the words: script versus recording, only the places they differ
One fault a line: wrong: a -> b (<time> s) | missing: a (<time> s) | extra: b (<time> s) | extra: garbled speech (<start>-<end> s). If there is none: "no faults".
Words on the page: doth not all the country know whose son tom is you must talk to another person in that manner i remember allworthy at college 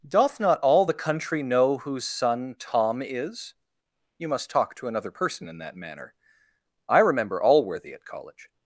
no faults